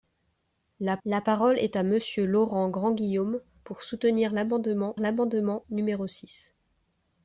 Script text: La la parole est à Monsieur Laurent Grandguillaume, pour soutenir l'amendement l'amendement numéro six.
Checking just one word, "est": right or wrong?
right